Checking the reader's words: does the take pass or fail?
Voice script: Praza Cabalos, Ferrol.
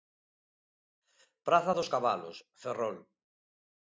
fail